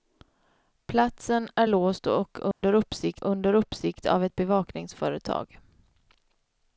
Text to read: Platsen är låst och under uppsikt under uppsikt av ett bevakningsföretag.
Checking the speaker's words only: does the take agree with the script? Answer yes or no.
yes